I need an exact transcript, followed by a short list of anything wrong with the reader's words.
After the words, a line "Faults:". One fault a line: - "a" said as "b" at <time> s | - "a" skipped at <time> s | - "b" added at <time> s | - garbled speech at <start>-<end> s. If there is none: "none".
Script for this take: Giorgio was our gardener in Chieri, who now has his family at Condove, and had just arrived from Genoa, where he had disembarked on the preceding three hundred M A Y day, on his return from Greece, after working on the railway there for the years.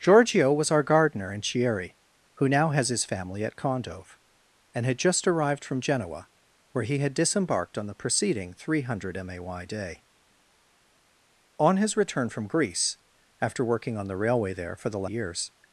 Giorgio was our gardener in Chieri, who now has his family at Condove, and had just arrived from Genoa, where he had disembarked on the preceding three hundred M A Y day, on his return from Greece, after working on the railway there for the years.
Faults:
none